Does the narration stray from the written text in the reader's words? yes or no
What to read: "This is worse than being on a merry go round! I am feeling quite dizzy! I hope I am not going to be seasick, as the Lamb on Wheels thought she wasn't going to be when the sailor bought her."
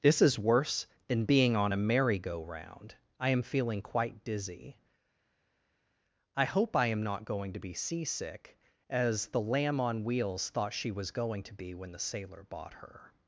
yes